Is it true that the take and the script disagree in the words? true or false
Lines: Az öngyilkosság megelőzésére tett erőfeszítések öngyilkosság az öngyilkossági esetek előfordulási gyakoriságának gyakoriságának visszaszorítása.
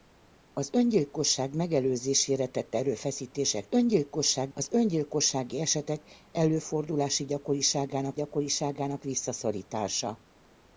false